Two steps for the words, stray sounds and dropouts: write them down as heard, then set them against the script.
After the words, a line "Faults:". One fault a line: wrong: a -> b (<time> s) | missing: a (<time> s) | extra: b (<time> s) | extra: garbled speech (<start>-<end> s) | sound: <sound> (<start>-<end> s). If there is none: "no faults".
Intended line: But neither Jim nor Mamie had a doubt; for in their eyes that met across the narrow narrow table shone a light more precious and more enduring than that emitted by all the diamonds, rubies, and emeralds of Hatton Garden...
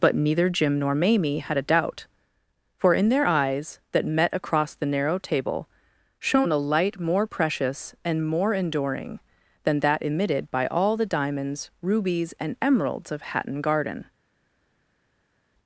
But neither Jim nor Mamie had a doubt; for in their eyes that met across the narrow table shone a light more precious and more enduring than that emitted by all the diamonds, rubies, and emeralds of Hatton Garden...
Faults:
missing: narrow (5.2 s)